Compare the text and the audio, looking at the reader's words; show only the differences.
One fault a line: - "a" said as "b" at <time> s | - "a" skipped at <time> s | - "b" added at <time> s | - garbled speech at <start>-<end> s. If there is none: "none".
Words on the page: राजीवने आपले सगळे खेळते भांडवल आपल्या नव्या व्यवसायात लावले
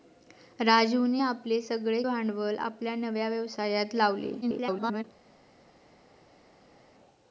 - "खेळते" skipped at 2.0 s
- garbled speech at 4.4-5.0 s